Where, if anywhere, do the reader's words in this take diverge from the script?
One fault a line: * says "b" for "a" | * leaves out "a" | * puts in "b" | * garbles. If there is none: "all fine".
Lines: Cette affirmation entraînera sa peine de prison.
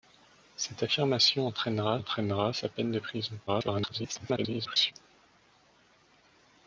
* puts in "entraînera"
* garbles